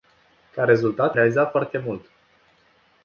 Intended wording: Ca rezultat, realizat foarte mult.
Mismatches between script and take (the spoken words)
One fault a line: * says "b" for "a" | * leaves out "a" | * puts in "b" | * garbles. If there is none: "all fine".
all fine